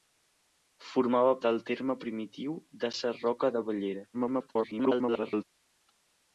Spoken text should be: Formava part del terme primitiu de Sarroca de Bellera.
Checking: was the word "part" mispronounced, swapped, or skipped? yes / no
yes